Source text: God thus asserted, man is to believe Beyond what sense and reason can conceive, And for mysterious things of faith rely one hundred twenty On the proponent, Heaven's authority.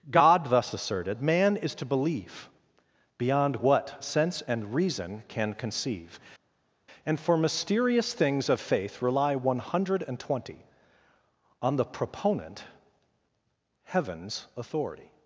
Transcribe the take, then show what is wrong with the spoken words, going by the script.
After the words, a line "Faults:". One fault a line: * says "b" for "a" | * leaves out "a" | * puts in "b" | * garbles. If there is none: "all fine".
God thus asserted, man is to believe Beyond what sense and reason can conceive, And for mysterious things of faith rely one hundred twenty On the proponent, Heaven's authority.
Faults:
all fine